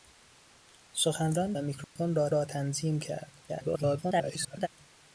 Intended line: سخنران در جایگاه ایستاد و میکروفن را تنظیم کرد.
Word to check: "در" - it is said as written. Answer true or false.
false